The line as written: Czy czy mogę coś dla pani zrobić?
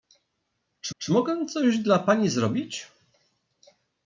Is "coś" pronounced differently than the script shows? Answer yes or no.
no